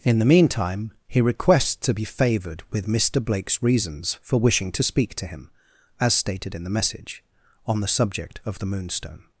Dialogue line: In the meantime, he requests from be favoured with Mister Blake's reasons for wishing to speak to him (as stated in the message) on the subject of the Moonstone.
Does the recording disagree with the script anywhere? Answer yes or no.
yes